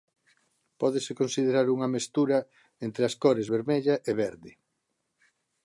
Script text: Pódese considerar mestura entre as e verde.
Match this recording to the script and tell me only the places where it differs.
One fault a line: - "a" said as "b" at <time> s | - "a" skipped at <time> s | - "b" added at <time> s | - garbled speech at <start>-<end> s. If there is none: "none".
- "unha" added at 1.8 s
- "cores vermella" added at 3.2 s